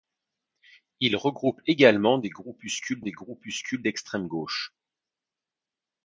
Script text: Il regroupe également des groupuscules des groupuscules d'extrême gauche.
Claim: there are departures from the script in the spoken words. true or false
false